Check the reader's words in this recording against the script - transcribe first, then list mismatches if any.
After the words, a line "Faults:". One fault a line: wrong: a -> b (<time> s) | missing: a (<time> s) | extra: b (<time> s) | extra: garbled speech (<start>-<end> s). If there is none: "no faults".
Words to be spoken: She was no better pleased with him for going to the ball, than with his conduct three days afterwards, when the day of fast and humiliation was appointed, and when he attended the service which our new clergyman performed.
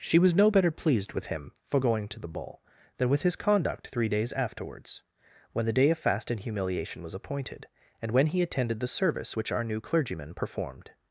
She was no better pleased with him for going to the ball, than with his conduct three days afterwards, when the day of fast and humiliation was appointed, and when he attended the service which our new clergyman performed.
Faults:
no faults